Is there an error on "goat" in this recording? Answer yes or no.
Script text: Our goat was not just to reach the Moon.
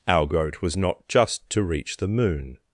no